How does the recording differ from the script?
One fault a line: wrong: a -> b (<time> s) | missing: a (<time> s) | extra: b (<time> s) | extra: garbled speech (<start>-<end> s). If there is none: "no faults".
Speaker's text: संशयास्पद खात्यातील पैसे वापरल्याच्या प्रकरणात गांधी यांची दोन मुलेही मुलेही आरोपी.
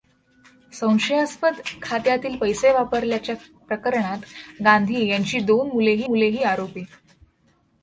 no faults